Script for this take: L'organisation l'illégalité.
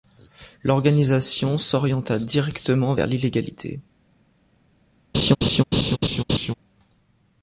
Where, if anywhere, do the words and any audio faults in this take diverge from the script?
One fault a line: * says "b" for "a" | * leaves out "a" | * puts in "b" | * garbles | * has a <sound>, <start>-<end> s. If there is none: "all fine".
* puts in "s'orienta directement vers"
* has a laugh, 5.1-6.5 s